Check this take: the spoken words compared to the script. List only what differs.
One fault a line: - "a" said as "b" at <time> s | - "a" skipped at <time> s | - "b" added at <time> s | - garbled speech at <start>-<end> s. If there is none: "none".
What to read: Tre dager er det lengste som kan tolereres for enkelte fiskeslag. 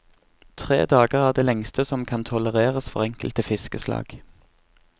none